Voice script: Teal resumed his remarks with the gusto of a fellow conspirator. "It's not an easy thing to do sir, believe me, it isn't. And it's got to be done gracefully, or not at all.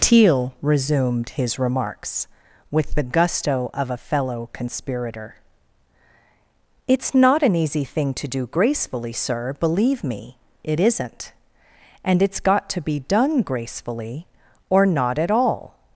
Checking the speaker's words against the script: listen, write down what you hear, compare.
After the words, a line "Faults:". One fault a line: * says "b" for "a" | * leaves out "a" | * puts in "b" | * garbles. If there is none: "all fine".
Teal resumed his remarks with the gusto of a fellow conspirator. "It's not an easy thing to do gracefully, sir, believe me, it isn't. And it's got to be done gracefully, or not at all.
Faults:
* puts in "gracefully"